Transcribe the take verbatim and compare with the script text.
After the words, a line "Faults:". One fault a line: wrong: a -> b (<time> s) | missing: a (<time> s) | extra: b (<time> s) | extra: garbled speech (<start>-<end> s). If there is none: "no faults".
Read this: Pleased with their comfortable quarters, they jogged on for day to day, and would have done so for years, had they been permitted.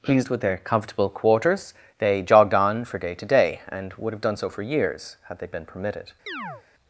Pleased with their comfortable quarters, they jogged on for day to day, and would have done so for years, had they been permitted.
Faults:
no faults